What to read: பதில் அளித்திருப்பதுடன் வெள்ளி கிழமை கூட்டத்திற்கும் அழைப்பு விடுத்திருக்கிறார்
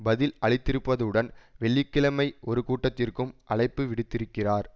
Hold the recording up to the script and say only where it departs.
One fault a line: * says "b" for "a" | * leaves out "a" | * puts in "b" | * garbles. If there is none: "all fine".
* puts in "ஒரு"